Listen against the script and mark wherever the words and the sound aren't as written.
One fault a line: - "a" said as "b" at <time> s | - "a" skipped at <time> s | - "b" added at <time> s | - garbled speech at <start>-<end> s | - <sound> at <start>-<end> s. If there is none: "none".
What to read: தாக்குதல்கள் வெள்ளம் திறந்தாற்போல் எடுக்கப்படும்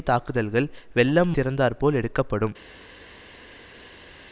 none